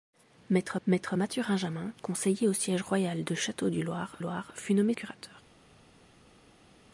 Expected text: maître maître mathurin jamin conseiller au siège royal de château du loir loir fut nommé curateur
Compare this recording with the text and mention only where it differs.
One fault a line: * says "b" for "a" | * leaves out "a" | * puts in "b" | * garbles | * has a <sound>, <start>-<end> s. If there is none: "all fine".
all fine